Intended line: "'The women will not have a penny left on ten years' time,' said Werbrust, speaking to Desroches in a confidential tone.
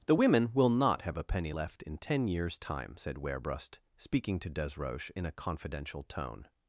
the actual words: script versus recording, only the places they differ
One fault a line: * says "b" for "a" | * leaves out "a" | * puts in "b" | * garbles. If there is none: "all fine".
* says "in" for "on"